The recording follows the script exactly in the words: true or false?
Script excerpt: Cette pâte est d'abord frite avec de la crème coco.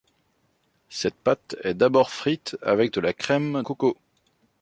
true